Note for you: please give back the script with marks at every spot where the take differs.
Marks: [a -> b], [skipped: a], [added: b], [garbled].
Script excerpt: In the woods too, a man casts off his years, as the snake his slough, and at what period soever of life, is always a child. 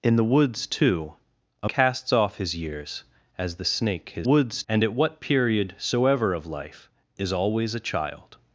In the woods too, a [skipped: man] casts off his years, as the snake his [slough, -> woods] and at what period soever of life, is always a child.